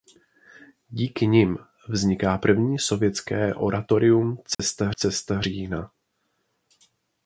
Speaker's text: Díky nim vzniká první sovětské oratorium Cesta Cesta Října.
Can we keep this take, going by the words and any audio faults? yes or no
no